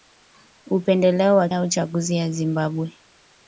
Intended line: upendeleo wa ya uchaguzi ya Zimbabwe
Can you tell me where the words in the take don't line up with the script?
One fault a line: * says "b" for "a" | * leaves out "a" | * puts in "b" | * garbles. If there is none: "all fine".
all fine